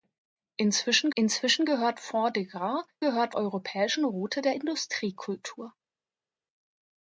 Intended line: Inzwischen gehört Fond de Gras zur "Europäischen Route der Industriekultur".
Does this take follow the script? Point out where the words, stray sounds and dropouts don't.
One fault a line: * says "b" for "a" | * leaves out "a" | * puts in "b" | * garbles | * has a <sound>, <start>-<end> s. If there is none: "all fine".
* puts in "inzwischen"
* says "gehört" for "zur"